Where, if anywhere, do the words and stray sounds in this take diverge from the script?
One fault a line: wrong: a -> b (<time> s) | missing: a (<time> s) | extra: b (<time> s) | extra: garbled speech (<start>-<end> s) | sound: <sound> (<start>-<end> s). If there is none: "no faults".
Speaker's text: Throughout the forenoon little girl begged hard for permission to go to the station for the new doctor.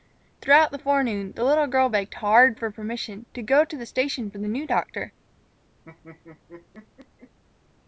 extra: the (1.3 s)
sound: laugh (5.8-7.4 s)